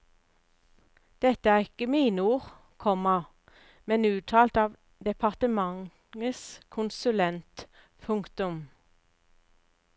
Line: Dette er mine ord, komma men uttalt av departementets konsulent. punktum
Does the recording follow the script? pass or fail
fail